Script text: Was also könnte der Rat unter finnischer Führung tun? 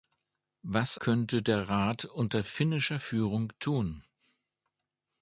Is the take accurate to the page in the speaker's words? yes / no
no